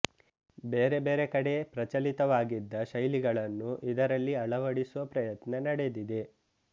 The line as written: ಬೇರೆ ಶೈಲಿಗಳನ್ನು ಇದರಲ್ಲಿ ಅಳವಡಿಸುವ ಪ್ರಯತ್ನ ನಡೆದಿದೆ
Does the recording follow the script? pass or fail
fail